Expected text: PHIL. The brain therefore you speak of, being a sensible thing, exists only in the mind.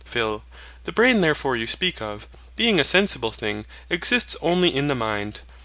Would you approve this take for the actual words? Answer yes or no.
yes